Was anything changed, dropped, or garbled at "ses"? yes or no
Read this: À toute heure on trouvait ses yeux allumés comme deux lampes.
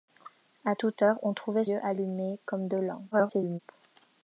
yes